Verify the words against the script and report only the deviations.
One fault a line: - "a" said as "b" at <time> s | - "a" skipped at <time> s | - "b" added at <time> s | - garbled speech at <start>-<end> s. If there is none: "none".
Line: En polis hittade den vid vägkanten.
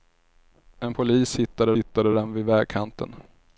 - "hittade" added at 1.7 s